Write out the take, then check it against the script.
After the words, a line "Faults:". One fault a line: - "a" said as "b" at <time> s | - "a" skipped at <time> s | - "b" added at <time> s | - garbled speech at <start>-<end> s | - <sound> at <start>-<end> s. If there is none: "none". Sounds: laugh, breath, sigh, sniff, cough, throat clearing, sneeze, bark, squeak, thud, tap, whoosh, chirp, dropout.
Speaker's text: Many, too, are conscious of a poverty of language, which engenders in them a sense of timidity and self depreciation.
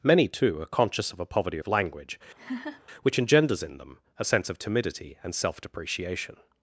Many, too, are conscious of a poverty of language, which engenders in them a sense of timidity and self depreciation.
Faults:
- laugh at 2.4-2.8 s